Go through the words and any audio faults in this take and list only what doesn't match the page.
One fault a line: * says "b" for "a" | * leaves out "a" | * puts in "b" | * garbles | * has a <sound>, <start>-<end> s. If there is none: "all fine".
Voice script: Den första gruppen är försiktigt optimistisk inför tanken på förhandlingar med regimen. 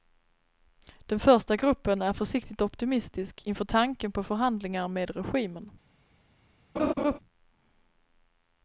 * has a laugh, 6.8-7.2 s